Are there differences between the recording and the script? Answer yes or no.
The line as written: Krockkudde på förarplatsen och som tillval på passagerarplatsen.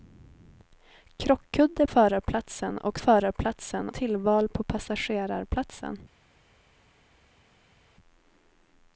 yes